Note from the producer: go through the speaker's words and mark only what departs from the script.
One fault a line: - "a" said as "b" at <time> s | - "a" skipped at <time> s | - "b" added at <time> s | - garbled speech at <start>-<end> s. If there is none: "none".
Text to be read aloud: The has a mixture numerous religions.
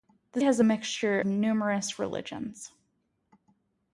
none